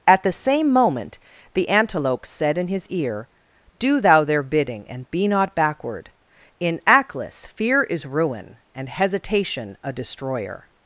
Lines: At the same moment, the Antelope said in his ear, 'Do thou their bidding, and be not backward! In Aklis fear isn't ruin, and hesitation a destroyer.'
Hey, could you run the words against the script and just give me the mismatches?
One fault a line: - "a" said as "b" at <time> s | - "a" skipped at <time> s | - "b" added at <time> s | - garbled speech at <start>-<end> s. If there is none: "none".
- "isn't" said as "is" at 7.8 s